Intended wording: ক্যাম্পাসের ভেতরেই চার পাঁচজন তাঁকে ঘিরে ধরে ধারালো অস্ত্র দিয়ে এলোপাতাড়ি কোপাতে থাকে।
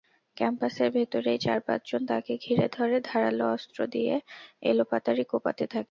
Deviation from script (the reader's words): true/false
false